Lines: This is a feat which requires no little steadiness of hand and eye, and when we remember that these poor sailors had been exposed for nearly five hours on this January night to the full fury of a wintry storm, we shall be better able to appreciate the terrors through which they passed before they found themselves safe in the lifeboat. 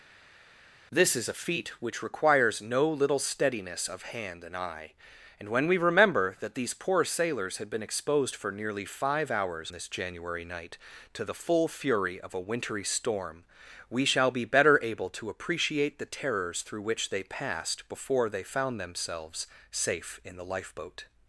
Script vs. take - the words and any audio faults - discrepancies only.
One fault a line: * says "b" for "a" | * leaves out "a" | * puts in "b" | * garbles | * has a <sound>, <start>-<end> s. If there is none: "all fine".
* leaves out "on"